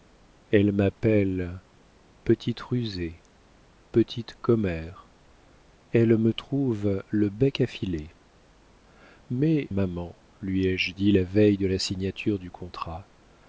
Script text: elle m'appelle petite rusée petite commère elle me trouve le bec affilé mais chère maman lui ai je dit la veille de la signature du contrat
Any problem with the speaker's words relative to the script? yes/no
yes